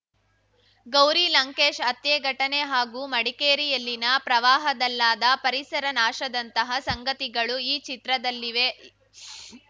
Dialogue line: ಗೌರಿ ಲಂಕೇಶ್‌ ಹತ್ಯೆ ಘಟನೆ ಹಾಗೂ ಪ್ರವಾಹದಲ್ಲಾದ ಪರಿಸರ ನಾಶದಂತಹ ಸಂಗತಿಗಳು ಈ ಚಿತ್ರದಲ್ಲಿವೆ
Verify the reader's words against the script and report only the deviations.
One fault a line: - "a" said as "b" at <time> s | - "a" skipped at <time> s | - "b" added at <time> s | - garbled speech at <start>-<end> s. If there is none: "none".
- "ಮಡಿಕೇರಿಯಲ್ಲಿನ" added at 3.1 s